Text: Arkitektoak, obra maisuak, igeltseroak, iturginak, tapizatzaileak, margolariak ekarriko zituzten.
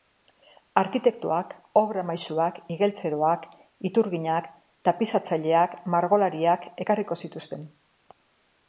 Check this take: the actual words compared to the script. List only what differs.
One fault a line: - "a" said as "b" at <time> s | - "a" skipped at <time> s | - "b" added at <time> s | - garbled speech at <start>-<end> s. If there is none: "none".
none